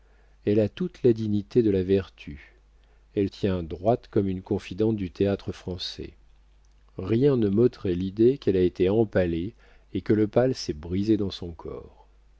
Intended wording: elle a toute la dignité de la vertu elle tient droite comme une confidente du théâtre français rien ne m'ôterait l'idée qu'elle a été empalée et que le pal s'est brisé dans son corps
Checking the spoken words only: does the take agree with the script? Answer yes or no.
yes